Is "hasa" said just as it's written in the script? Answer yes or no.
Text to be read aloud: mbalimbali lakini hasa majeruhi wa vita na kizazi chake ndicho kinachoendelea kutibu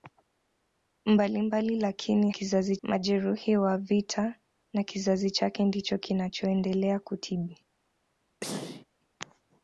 no